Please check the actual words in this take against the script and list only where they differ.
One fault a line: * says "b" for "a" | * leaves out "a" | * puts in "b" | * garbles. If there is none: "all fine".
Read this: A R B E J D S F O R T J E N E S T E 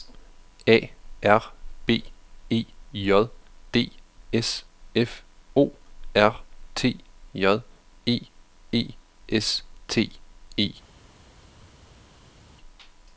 * leaves out "N"